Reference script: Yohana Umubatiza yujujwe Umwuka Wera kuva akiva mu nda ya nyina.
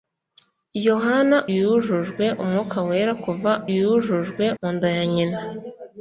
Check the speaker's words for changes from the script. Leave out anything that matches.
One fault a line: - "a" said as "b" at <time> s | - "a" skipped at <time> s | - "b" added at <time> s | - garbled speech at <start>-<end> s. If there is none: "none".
- "Umubatiza" skipped at 1.4 s
- "akiva" said as "yujujwe" at 3.8 s